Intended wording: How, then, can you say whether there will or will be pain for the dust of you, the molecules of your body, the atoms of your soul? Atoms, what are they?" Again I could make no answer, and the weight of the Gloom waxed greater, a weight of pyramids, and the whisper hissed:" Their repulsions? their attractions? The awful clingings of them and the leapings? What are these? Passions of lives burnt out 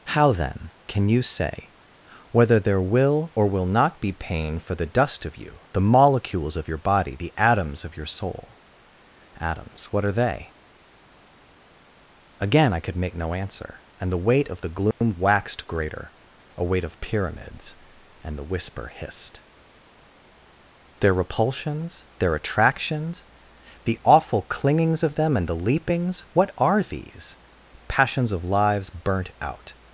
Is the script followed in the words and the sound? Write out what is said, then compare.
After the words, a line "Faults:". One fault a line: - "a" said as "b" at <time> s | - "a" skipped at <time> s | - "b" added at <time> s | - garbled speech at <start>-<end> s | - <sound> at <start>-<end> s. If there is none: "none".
How, then, can you say whether there will or will not be pain for the dust of you, the molecules of your body, the atoms of your soul? Atoms, what are they?" Again I could make no answer, and the weight of the Gloom waxed greater, a weight of pyramids, and the whisper hissed:" Their repulsions? their attractions? The awful clingings of them and the leapings? What are these? Passions of lives burnt out
Faults:
- "not" added at 3.7 s
- dropout at 14.9-15.0 s